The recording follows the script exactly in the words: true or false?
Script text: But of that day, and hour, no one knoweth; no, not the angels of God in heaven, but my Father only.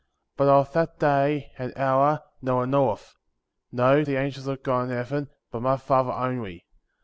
false